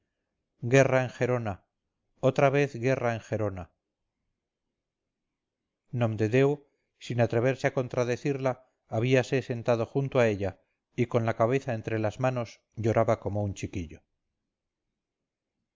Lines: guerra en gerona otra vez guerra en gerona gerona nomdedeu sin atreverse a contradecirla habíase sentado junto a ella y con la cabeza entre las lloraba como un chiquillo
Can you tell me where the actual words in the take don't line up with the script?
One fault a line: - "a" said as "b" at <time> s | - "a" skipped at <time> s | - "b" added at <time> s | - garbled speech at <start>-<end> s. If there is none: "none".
- "gerona" skipped at 3.6 s
- "manos" added at 12.3 s